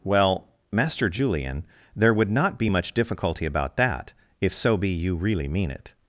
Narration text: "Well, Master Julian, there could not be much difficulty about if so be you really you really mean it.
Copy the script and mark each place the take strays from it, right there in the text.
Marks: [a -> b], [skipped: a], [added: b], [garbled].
"Well, Master Julian, there [could -> would] not be much difficulty about [added: that] if so be you really [skipped: you really] mean it.